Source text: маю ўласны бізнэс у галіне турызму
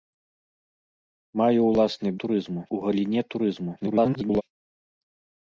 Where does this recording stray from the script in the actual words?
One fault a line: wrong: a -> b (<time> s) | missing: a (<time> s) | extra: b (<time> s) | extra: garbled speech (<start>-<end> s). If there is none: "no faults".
wrong: бізнэс -> турызму (2.2 s)
extra: garbled speech (3.8-4.4 s)